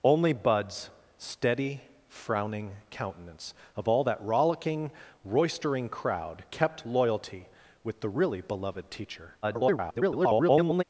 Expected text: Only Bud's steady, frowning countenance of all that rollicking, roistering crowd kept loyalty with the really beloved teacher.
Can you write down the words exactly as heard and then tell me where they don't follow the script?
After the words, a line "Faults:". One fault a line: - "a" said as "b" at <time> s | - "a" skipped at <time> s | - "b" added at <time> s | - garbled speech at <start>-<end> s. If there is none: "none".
Only Bud's steady, frowning countenance of all that rollicking, roistering crowd kept loyalty with the really beloved teacher. [garbled]
Faults:
- garbled speech at 9.4-10.8 s